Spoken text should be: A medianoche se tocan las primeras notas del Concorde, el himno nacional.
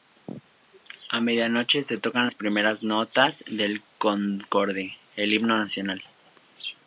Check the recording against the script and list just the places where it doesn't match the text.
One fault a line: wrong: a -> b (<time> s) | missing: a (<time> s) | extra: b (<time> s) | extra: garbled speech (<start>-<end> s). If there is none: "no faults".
no faults